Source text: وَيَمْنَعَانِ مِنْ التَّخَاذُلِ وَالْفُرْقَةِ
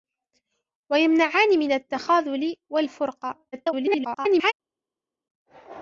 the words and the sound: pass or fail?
fail